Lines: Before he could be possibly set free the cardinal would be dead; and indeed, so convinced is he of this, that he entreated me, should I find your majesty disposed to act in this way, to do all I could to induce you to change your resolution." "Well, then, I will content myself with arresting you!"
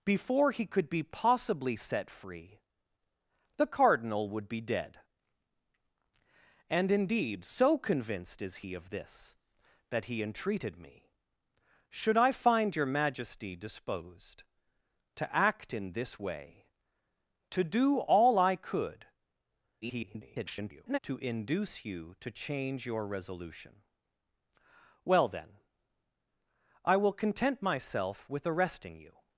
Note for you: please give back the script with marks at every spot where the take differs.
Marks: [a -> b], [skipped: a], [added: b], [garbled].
Before he could be possibly set free the cardinal would be dead; and indeed, so convinced is he of this, that he entreated me, should I find your majesty disposed to act in this way, to do all I could [garbled] to induce you to change your resolution." "Well, then, I will content myself with arresting you!"